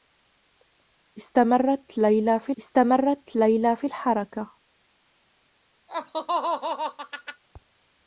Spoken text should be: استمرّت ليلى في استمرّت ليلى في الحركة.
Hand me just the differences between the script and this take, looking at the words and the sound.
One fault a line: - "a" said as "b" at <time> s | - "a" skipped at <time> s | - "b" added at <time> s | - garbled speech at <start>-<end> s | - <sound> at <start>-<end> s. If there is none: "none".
- laugh at 5.9-7.4 s